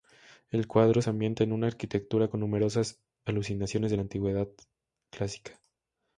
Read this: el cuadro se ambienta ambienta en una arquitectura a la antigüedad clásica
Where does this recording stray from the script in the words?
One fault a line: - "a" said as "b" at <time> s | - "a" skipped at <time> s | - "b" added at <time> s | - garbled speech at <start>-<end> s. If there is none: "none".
- "ambienta" skipped at 1.4 s
- "con numerosas alusiones" added at 2.3 s